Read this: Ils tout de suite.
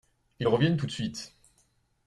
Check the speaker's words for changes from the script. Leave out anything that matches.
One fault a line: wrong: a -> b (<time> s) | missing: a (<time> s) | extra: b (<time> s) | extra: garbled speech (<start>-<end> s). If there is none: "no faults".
extra: reviennent (0.5 s)